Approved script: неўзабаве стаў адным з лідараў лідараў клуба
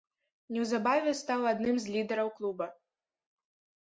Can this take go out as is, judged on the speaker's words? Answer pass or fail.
fail